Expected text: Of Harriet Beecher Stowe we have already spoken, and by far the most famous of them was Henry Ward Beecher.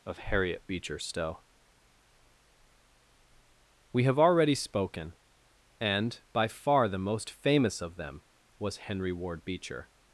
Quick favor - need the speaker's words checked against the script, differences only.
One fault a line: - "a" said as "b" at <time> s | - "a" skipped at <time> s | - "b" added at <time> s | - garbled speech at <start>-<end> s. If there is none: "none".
none